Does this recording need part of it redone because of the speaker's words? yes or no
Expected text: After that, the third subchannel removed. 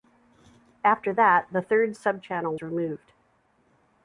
no